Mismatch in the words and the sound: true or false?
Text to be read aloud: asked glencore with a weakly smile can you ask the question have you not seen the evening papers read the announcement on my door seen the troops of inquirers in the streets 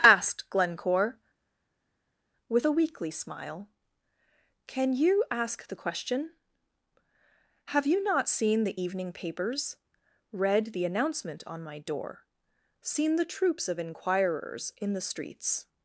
false